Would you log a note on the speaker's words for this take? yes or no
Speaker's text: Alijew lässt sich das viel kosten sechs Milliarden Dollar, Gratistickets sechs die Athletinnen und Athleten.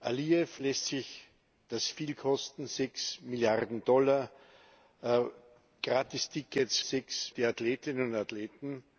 no